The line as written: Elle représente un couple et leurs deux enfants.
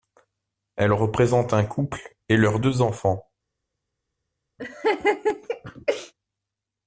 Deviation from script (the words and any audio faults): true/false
true